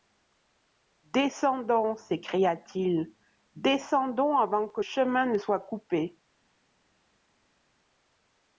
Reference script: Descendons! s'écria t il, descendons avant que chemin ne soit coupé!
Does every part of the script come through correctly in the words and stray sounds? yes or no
yes